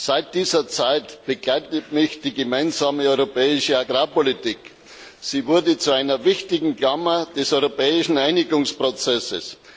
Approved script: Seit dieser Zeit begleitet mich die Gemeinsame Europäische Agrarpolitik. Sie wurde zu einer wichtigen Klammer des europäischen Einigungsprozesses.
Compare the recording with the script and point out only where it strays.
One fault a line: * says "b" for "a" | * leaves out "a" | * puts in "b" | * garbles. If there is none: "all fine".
all fine